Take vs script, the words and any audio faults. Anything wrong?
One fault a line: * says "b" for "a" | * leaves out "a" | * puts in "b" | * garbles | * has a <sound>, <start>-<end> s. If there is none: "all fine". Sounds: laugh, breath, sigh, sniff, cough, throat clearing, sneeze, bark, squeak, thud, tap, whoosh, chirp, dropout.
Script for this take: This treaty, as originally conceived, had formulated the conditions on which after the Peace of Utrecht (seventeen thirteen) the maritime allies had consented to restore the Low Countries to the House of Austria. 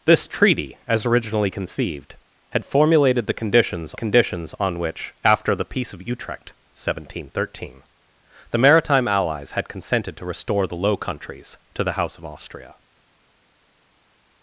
* puts in "conditions"